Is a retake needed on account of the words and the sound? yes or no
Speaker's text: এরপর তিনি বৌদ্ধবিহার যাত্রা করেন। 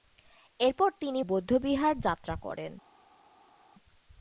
no